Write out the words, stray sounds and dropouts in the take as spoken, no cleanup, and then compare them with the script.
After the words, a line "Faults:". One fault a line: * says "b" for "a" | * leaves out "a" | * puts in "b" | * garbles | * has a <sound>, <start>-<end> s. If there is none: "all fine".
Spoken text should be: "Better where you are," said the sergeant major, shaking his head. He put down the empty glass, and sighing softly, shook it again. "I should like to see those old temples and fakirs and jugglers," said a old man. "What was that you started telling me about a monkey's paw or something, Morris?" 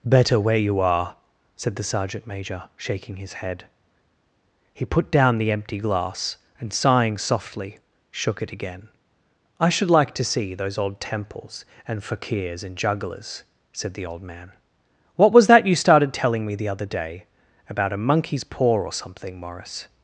"Better where you are," said the sergeant major, shaking his head. He put down the empty glass, and sighing softly, shook it again. "I should like to see those old temples and fakirs and jugglers," said the old man. "What was that you started telling me the other day about a monkey's paw or something, Morris?"
Faults:
* says "the" for "a"
* puts in "the other day"